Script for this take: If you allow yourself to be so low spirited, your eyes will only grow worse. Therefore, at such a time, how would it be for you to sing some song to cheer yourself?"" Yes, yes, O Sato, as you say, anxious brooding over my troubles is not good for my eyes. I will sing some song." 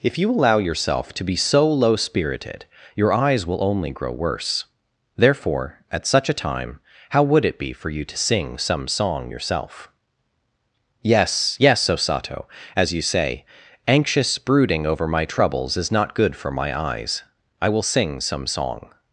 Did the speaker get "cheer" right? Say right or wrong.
wrong